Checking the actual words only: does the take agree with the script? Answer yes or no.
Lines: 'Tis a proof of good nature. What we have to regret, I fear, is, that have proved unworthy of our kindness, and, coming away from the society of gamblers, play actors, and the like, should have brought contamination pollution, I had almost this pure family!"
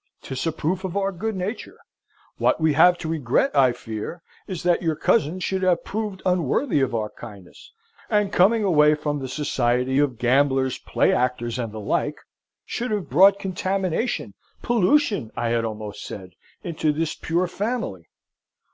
no